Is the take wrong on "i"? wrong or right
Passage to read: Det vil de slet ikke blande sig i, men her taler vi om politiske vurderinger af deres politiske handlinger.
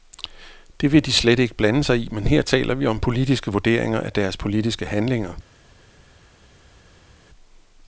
right